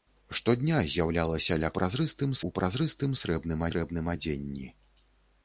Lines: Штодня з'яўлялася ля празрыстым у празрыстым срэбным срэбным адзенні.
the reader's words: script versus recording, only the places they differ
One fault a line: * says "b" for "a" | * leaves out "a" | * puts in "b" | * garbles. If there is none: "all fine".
all fine